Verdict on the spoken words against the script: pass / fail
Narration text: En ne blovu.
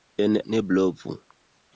pass